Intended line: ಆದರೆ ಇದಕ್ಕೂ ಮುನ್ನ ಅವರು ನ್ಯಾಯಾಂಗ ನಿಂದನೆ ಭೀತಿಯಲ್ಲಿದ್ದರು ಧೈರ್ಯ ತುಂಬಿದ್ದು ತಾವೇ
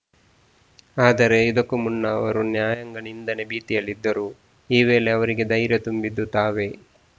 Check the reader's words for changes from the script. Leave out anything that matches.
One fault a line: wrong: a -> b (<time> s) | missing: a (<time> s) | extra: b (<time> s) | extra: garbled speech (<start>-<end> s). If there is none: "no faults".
extra: ಈ ವೇಳೆ ಅವರಿಗೆ (4.7 s)